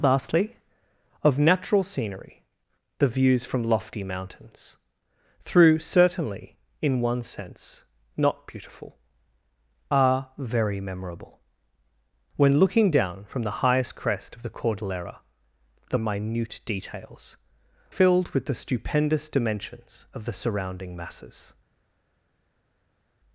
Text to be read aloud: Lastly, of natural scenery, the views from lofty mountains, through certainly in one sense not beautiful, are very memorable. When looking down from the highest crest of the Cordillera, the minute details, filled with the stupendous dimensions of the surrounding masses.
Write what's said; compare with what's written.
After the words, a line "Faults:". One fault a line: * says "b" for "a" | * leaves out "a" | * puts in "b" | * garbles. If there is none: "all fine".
Lastly, of natural scenery, the views from lofty mountains, through certainly in one sense not beautiful, are very memorable. When looking down from the highest crest of the Cordillera, the minute details, filled with the stupendous dimensions of the surrounding masses.
Faults:
all fine